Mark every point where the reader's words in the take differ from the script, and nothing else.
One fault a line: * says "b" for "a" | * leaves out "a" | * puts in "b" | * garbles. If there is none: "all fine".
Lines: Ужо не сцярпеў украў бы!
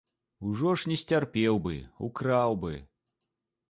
* puts in "ж"
* puts in "бы"